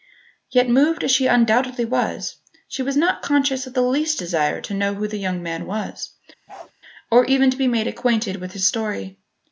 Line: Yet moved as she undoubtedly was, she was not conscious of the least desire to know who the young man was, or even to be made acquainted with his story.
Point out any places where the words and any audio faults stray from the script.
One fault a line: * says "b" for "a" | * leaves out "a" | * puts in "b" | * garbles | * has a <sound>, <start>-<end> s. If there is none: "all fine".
* has a bark, 6.5-6.7 s